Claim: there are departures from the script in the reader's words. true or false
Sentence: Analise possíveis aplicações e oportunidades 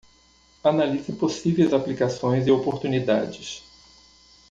false